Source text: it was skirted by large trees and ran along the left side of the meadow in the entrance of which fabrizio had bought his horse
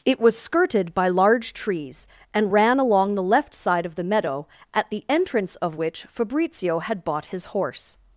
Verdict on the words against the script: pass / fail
fail